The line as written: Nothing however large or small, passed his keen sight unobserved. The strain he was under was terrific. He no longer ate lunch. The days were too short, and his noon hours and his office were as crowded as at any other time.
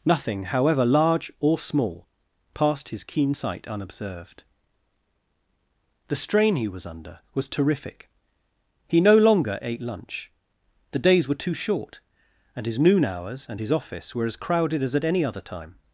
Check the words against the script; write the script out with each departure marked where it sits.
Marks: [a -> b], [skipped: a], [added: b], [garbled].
Nothing however large or small, passed his keen sight unobserved. The strain he was under was terrific. He no longer ate lunch. The days were too short, and his noon hours and his office were as crowded as at any other time.